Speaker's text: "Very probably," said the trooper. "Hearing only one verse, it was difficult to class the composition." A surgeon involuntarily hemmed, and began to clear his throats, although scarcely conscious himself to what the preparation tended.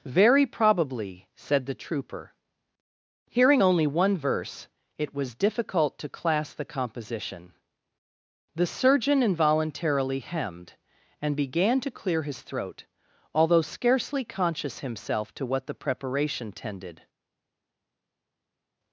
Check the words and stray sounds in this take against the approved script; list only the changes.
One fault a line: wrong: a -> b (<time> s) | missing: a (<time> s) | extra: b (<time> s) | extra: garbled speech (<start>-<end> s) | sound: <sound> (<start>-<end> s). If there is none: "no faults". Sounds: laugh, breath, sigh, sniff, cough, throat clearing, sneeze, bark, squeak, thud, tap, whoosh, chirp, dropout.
wrong: A -> The (8.5 s)
wrong: throats -> throat (12.4 s)